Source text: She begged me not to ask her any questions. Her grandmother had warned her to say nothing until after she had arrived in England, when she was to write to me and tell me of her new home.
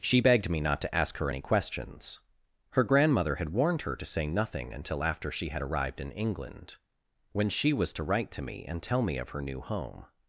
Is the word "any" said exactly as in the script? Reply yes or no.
yes